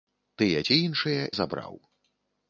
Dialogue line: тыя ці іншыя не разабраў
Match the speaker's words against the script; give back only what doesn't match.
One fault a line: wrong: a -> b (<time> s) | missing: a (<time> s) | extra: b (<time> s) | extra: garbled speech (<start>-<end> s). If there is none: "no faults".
missing: не (1.3 s)